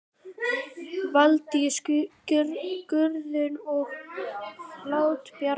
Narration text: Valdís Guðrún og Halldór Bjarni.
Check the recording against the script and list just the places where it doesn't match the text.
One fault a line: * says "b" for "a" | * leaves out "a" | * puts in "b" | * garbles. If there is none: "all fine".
all fine